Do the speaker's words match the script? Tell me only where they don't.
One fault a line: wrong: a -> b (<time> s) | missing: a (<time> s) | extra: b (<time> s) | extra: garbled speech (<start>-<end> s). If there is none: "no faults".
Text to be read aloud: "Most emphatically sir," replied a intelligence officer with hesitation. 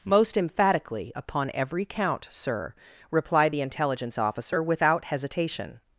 extra: upon every count (1.1 s)
wrong: a -> the (3.5 s)
wrong: with -> without (4.6 s)